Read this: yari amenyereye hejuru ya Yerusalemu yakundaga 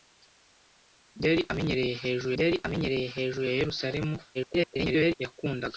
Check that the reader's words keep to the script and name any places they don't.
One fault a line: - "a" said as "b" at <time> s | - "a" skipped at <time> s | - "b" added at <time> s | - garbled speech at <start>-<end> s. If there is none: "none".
- "yari amenyereye hejuru" added at 2.4 s
- garbled speech at 4.3-5.1 s